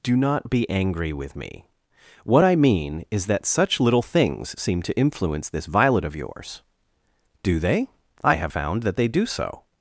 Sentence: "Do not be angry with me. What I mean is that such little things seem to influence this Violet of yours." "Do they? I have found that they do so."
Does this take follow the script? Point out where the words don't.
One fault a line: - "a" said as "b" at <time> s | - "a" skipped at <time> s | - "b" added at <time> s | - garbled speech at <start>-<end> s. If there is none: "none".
none